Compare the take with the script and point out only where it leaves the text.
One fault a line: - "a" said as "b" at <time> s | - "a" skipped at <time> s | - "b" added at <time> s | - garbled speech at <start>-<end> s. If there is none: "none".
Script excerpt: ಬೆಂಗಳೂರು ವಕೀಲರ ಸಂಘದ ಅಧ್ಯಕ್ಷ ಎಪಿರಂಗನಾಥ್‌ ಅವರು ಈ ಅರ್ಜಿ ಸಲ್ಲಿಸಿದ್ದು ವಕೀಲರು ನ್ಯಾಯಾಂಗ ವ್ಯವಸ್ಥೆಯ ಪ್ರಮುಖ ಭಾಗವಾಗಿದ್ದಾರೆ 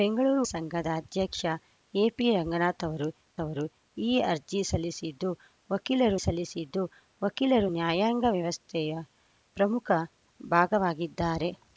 - "ವಕೀಲರ" skipped at 0.4 s
- "ಅವರು" added at 3.4 s
- "ಸಲ್ಲಿಸಿದ್ದು ವಕೀಲರು" added at 6.2 s